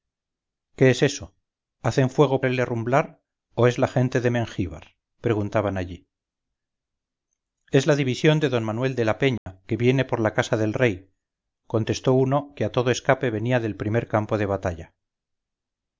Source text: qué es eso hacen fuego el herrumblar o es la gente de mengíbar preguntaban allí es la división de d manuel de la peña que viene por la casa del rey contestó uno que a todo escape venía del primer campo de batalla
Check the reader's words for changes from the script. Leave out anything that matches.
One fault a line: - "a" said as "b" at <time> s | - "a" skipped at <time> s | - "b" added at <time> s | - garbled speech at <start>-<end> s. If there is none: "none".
none